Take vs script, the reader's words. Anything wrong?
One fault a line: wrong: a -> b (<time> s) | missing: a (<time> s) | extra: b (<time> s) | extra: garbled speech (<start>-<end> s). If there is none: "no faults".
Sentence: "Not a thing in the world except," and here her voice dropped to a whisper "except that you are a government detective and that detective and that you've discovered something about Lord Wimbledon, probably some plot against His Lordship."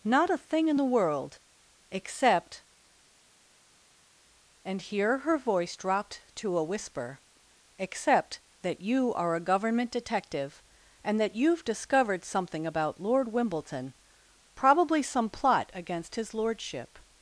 missing: detective and that (11.4 s)